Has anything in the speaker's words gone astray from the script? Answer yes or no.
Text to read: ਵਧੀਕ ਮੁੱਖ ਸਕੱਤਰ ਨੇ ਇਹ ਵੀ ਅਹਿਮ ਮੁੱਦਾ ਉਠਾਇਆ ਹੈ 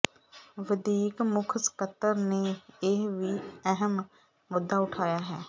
no